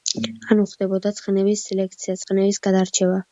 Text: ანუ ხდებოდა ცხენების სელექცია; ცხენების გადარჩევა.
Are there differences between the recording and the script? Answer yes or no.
no